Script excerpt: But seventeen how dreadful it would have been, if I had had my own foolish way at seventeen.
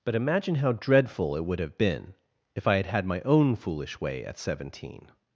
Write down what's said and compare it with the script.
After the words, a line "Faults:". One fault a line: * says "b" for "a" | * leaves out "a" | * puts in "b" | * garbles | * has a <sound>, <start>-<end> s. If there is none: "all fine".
But imagine how dreadful it would have been, if I had had my own foolish way at seventeen.
Faults:
* says "imagine" for "seventeen"